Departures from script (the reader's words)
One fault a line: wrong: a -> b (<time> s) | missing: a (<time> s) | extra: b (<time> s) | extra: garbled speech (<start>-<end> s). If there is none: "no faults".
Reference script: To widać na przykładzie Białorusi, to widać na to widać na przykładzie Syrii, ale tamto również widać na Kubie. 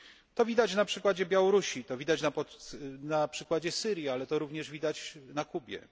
missing: to widać na (3.3 s)
wrong: tamto -> to (4.3 s)